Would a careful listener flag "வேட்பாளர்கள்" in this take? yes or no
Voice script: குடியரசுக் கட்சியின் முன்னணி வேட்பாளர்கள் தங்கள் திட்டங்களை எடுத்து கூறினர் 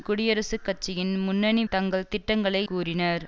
yes